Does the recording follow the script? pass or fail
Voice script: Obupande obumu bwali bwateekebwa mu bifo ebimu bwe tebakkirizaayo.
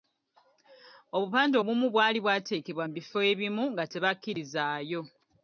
fail